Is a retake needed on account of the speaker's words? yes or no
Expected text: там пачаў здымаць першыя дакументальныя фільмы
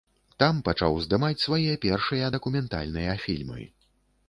yes